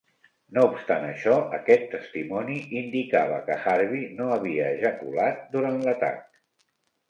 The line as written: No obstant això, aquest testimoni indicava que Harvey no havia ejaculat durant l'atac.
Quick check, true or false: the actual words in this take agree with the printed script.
true